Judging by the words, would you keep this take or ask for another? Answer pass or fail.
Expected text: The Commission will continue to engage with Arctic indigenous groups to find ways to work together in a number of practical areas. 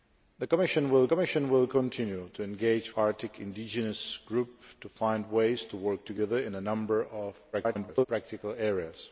fail